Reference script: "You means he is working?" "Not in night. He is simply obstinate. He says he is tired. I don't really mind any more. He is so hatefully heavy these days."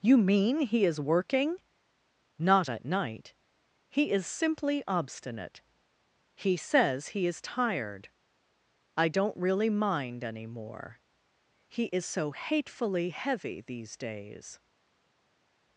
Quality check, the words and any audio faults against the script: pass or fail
fail